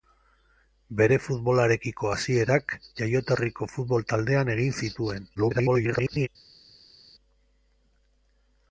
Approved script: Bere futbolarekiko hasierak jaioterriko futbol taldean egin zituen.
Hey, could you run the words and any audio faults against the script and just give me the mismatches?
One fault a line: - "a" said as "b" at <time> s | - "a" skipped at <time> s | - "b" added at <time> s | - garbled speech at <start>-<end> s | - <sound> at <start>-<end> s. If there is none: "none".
- garbled speech at 5.3-6.3 s